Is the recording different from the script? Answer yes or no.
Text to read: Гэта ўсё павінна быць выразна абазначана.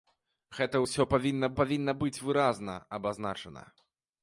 yes